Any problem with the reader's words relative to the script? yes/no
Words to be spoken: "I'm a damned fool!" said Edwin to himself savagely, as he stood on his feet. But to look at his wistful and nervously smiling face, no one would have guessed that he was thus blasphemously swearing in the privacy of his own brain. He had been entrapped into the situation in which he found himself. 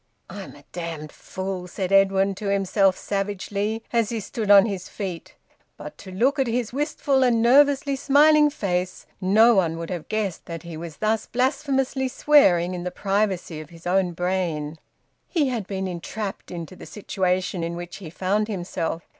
no